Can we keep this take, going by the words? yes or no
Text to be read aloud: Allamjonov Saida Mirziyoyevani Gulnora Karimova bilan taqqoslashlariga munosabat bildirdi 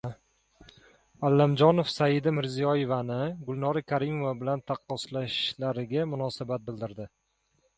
yes